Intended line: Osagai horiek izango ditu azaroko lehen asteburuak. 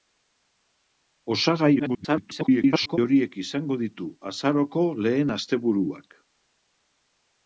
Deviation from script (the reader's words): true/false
true